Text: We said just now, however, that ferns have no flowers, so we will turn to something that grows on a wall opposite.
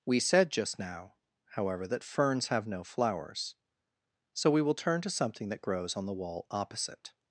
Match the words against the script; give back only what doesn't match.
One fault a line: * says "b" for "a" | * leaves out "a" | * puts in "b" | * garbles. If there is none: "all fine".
* says "the" for "a"